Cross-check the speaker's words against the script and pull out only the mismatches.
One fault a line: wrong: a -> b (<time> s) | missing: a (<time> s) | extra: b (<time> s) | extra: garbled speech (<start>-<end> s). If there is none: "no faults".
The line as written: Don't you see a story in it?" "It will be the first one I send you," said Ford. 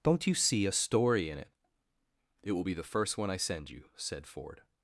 no faults